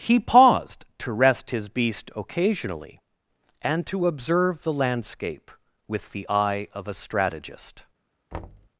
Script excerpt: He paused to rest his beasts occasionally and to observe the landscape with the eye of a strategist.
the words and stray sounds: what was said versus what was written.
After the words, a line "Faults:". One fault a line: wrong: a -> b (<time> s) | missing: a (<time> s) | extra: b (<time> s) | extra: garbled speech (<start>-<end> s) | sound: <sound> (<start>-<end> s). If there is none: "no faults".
He paused to rest his beast occasionally and to observe the landscape with the eye of a strategist.
Faults:
wrong: beasts -> beast (1.7 s)
sound: thud (8.3-8.7 s)